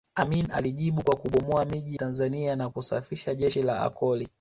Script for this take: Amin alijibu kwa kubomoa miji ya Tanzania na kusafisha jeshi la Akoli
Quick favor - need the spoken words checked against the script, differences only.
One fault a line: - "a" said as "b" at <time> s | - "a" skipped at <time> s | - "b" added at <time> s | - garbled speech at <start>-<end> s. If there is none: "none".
- "ya" skipped at 2.0 s